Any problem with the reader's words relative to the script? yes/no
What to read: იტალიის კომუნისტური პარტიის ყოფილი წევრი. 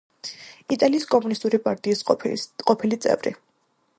no